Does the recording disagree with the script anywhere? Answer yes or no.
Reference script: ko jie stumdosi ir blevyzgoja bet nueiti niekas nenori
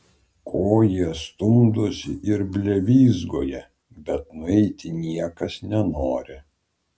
no